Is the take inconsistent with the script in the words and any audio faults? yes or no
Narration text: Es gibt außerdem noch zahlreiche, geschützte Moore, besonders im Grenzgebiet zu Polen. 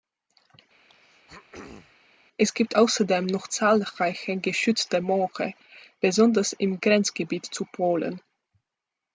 yes